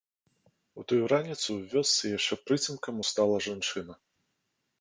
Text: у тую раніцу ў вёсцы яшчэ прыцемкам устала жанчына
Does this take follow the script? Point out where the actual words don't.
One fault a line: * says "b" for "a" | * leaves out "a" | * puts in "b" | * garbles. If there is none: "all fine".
all fine